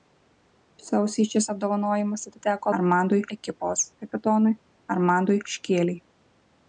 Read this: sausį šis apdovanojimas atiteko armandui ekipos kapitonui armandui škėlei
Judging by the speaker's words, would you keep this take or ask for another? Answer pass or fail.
pass